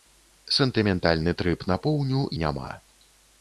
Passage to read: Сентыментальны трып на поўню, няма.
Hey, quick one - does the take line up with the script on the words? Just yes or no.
yes